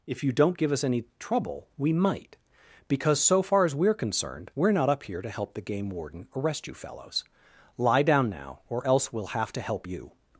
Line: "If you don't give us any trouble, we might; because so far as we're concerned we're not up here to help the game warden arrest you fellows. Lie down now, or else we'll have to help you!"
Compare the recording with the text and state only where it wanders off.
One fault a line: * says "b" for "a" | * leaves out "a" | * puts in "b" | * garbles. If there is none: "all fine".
all fine